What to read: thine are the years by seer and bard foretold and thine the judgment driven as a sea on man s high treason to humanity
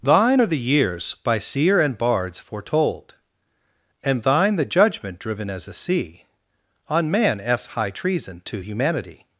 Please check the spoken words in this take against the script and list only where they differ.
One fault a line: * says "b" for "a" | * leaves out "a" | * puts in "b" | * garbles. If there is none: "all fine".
* says "bards" for "bard"